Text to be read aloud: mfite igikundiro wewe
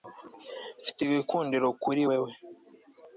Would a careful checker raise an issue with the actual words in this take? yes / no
yes